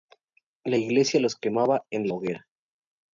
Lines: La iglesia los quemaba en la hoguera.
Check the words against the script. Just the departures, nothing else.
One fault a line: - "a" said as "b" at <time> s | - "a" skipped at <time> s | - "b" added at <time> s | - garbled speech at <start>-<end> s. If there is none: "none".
- "la" skipped at 2.1 s